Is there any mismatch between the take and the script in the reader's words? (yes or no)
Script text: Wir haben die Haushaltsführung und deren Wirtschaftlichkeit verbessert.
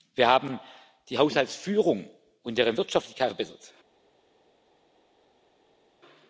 no